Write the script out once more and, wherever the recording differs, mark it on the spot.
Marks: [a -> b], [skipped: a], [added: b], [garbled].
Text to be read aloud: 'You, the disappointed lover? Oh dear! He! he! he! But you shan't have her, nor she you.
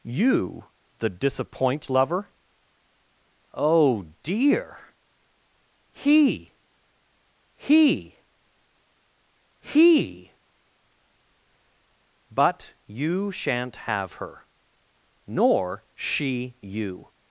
'You, the [disappointed -> disappoint] lover? Oh dear! He! he! he! But you shan't have her, nor she you.